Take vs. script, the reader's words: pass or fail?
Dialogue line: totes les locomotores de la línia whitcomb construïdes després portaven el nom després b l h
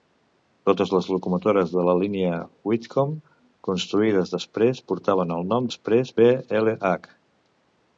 pass